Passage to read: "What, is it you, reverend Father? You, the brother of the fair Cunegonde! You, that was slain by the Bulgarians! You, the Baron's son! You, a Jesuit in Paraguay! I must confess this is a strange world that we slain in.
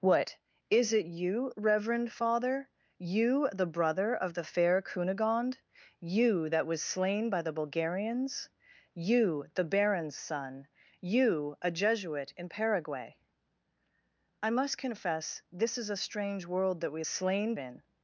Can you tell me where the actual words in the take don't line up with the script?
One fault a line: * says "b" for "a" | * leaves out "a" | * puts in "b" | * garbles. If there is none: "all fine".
all fine